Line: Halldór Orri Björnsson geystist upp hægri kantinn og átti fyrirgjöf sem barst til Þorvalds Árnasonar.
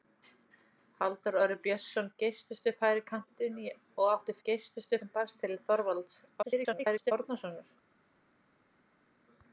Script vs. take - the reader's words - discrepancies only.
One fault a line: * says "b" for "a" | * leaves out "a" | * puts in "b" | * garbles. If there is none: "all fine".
* says "geystist" for "fyrirgjöf"
* garbles